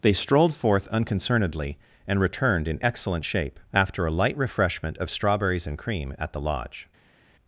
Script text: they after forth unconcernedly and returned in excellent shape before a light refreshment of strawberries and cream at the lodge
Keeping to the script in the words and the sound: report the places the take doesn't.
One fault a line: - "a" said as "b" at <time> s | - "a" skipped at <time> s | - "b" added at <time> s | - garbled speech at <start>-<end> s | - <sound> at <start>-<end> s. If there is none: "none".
- "after" said as "strolled" at 0.1 s
- "before" said as "after" at 3.7 s